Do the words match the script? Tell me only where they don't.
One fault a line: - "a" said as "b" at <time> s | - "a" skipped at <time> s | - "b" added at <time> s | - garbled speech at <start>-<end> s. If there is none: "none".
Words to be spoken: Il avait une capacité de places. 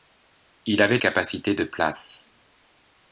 - "une" skipped at 1.0 s